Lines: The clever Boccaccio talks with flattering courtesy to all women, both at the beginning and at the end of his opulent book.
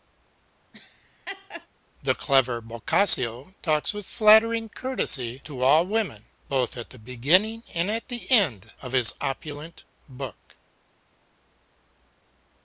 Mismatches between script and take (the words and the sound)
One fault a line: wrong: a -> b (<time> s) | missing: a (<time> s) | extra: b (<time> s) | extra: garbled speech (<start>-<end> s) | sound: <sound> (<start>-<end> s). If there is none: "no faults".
sound: laugh (0.7-1.7 s)